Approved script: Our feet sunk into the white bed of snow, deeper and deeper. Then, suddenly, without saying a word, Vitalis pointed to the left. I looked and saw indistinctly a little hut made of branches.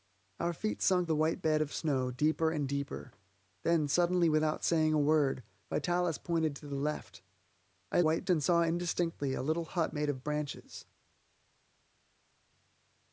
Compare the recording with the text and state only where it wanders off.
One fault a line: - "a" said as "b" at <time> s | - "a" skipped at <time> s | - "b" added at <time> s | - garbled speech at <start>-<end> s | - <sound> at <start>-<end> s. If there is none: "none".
- "into" skipped at 1.1 s
- "looked" said as "white" at 8.0 s